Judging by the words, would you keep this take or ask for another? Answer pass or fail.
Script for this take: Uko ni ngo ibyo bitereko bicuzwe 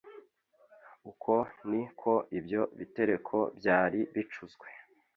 fail